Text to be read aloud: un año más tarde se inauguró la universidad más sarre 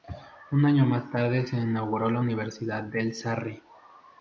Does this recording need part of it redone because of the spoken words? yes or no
yes